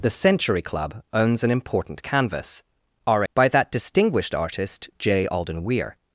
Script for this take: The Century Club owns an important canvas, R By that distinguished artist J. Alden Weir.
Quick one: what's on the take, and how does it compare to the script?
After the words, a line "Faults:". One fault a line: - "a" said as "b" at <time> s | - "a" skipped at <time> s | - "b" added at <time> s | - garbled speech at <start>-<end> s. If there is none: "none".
The Century Club owns an important canvas, R By that distinguished artist J. Alden Weir.
Faults:
none